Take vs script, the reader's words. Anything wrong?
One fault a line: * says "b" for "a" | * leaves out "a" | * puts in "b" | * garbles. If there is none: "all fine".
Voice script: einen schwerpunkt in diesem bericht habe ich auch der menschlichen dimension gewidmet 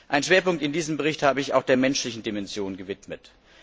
all fine